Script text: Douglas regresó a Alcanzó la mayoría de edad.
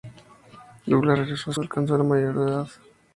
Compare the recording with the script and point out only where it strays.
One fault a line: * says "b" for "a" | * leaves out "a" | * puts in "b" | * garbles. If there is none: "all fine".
all fine